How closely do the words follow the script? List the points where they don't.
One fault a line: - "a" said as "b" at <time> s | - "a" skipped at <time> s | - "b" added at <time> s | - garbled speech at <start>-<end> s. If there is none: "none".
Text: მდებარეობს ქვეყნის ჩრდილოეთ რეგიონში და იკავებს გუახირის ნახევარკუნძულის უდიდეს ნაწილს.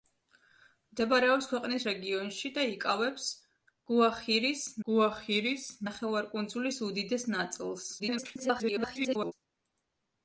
- "ჩრდილოეთ" skipped at 1.9 s
- "გუახირის" added at 4.9 s
- garbled speech at 8.0-9.3 s